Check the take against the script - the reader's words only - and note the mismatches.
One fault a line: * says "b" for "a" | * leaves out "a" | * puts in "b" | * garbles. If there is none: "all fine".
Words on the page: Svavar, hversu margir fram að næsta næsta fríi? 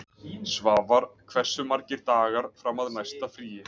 * puts in "dagar"
* leaves out "næsta"